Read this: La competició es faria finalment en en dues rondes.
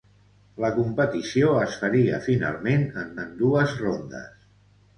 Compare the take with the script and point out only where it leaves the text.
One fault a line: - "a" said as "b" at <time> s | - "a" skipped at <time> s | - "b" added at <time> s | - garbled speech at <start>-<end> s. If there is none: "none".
none